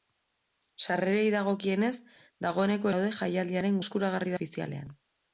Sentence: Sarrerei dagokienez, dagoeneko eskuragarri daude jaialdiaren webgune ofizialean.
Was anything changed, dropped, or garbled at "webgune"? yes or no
yes